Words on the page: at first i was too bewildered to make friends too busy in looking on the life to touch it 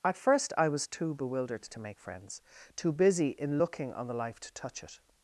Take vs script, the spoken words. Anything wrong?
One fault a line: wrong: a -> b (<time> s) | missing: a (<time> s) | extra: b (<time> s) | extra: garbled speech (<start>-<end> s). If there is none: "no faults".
no faults